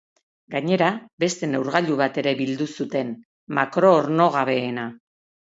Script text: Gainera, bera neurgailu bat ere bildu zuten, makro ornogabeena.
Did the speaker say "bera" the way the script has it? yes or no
no